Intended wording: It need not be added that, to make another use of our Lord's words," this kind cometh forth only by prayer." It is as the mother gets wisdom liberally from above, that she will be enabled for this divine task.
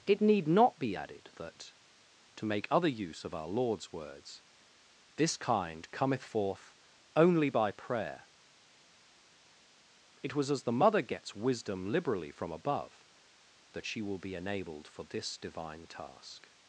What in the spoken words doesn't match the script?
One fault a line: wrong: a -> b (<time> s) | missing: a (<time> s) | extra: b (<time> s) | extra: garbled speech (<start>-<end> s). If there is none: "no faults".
wrong: another -> other (2.7 s)
wrong: is -> was (10.4 s)